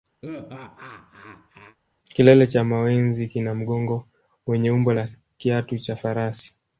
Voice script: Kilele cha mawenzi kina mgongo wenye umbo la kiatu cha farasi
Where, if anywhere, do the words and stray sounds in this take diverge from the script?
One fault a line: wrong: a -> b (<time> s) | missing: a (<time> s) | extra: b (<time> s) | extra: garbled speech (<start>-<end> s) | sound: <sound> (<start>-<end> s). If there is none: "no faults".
sound: laugh (0.2-1.8 s)